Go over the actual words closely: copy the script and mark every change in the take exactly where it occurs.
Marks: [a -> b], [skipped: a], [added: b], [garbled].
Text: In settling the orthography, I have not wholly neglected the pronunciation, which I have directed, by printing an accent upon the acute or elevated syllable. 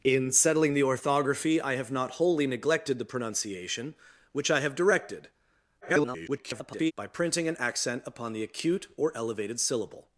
In settling the orthography, I have not wholly neglected the pronunciation, which I have directed, [garbled] by printing an accent upon the acute or elevated syllable.